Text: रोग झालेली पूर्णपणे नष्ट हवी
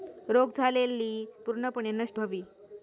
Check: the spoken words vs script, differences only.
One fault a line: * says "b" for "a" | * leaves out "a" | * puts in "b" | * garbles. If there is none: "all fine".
all fine